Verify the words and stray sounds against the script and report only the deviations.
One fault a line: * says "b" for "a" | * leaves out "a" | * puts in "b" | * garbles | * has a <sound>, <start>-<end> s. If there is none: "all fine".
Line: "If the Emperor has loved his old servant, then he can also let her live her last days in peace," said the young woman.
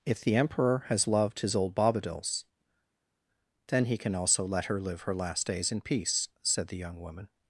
* says "bobadils" for "servant"